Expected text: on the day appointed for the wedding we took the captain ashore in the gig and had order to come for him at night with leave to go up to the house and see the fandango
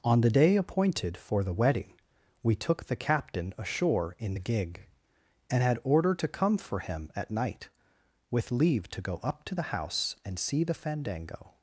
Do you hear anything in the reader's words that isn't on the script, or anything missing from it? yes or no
no